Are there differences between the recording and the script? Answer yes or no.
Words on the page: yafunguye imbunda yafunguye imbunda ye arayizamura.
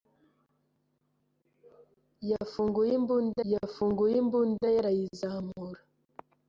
no